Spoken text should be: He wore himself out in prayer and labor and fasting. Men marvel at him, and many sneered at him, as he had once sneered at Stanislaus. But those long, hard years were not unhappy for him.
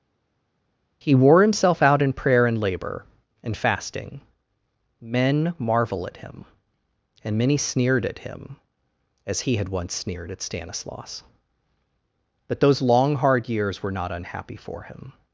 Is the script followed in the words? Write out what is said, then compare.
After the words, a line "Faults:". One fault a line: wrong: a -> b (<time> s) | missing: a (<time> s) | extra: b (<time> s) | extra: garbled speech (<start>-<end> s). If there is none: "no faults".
He wore himself out in prayer and labor and fasting. Men marvel at him, and many sneered at him, as he had once sneered at Stanislaus. But those long, hard years were not unhappy for him.
Faults:
no faults